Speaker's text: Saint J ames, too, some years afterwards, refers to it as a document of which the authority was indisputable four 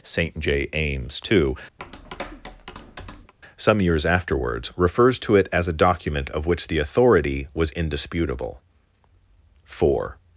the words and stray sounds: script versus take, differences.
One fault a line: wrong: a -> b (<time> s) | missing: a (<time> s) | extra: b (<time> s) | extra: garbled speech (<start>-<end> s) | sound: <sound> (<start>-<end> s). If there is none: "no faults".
sound: tap (1.8-3.3 s)